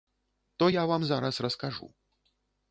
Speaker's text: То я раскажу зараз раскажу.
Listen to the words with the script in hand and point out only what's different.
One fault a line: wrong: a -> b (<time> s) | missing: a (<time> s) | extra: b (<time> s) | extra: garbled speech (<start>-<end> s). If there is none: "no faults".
wrong: раскажу -> вам (0.8 s)